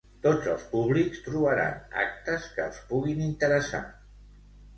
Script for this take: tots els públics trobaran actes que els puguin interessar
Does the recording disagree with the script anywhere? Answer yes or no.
no